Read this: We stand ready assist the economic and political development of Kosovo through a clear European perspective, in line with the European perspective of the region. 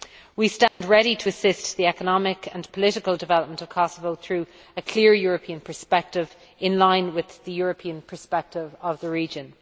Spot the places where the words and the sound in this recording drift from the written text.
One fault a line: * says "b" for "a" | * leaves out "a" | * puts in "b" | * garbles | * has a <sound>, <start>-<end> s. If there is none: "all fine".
* has a dropout, 0.7-0.8 s
* puts in "to"